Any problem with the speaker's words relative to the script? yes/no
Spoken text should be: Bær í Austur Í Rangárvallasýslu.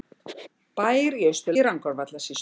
no